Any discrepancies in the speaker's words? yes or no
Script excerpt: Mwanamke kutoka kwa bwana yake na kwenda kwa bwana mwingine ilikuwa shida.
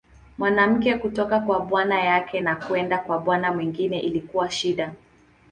no